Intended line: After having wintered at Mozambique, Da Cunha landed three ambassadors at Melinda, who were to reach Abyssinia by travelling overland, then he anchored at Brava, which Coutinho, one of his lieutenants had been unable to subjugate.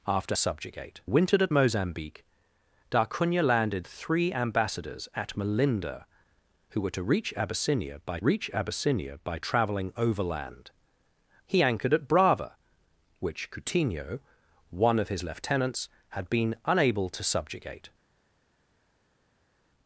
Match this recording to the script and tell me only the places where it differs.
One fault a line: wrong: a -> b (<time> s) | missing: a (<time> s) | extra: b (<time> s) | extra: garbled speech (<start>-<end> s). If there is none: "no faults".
wrong: having -> subjugate (0.3 s)
extra: reach Abyssinia by (8.2 s)
missing: then (10.7 s)